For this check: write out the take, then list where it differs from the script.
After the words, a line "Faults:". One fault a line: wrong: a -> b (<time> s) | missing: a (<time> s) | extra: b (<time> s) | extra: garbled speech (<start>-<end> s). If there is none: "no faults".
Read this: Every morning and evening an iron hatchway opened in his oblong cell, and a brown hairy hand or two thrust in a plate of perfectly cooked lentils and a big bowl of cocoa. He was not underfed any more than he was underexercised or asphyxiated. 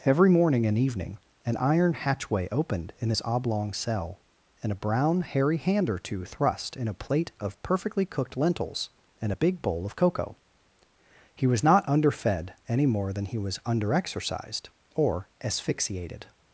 Every morning and evening an iron hatchway opened in his oblong cell, and a brown hairy hand or two thrust in a plate of perfectly cooked lentils and a big bowl of cocoa. He was not underfed any more than he was underexercised or asphyxiated.
Faults:
no faults